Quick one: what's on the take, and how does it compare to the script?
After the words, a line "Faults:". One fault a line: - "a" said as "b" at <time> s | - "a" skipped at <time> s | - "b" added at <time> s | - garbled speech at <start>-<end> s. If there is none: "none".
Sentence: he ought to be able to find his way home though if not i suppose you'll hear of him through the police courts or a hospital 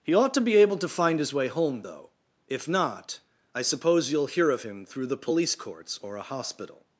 he ought to be able to find his way home though if not i suppose you'll hear of him through the police courts or a hospital
Faults:
none